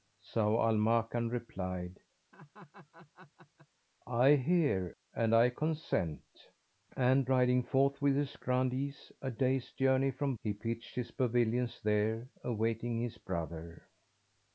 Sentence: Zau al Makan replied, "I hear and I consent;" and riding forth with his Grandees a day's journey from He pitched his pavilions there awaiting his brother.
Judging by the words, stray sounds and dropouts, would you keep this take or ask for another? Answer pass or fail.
fail